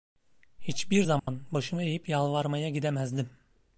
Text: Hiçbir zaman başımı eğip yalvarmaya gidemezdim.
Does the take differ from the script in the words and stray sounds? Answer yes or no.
yes